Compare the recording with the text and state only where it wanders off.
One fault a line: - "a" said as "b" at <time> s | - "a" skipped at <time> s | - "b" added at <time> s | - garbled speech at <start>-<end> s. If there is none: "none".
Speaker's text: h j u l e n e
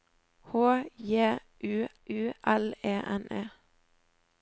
- "u" added at 2.1 s